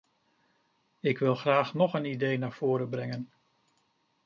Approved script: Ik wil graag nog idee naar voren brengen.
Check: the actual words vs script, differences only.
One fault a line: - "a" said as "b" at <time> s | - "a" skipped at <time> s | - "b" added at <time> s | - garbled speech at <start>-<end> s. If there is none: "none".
- "een" added at 1.9 s